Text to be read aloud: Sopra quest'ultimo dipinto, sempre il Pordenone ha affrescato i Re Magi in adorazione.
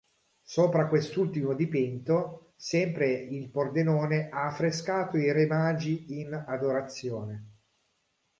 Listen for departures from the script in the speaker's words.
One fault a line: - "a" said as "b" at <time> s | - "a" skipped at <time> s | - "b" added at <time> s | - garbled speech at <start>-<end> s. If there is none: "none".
none